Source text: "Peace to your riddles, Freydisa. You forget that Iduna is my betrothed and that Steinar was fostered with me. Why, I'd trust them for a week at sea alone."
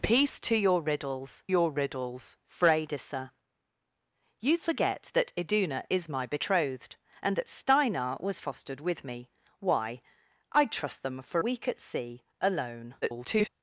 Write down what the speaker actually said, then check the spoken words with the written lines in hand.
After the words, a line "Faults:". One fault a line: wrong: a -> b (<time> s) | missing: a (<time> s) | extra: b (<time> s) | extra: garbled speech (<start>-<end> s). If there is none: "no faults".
"Peace to your riddles your riddles, Freydisa. You forget that Iduna is my betrothed and that Steinar was fostered with me. Why, I'd trust them for week at sea alone." [garbled]
Faults:
extra: your riddles (1.5 s)
missing: a (11.4 s)
extra: garbled speech (13.0-13.5 s)